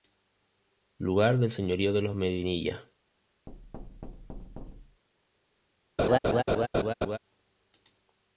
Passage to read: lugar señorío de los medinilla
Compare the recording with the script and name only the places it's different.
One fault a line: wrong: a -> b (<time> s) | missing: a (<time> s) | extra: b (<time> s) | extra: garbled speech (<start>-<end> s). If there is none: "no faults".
extra: del (1.4 s)